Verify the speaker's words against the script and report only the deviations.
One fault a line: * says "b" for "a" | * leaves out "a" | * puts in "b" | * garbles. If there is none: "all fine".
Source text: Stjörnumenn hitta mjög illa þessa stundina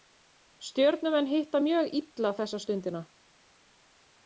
all fine